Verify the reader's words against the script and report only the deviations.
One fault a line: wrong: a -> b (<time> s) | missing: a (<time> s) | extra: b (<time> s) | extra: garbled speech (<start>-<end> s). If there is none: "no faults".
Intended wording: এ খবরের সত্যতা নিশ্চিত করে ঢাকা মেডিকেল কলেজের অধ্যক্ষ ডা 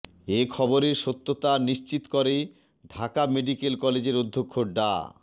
no faults